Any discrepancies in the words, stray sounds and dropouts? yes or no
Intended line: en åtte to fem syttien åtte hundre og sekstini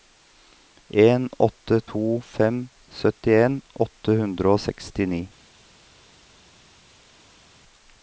no